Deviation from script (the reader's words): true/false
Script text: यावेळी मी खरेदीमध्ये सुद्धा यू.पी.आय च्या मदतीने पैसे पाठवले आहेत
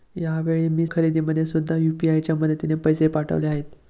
false